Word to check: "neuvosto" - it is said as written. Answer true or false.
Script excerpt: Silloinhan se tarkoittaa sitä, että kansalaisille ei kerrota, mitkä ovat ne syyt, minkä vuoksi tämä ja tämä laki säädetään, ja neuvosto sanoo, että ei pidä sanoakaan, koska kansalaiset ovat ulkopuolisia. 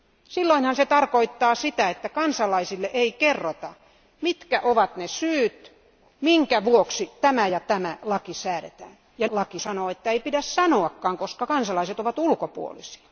false